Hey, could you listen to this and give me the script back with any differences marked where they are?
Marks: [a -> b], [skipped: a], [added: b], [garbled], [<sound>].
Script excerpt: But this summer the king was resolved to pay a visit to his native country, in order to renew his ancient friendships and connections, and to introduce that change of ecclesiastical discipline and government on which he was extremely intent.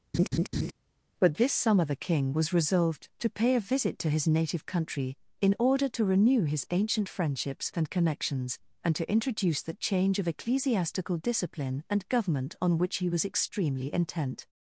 [laugh] But this summer the king was resolved to pay a visit to his native country, in order to renew his ancient friendships and connections, and to introduce that change of ecclesiastical discipline and government on which he was extremely intent.